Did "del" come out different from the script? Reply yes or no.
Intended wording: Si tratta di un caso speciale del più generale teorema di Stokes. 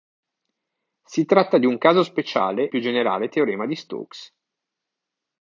yes